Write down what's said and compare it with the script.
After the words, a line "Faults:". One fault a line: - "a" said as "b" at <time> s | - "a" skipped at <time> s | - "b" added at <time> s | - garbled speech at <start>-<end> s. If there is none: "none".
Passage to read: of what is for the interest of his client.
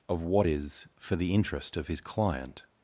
of what is for the interest of his client.
Faults:
none